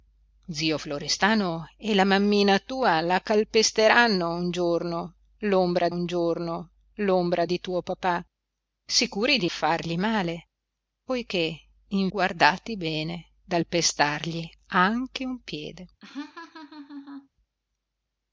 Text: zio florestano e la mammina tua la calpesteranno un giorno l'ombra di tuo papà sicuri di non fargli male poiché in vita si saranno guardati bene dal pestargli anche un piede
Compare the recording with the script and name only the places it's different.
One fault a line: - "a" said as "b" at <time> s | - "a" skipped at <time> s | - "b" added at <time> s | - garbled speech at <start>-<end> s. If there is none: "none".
- "un giorno l'ombra" added at 5.9 s
- "non" skipped at 9.5 s
- "vita si saranno" skipped at 12.1 s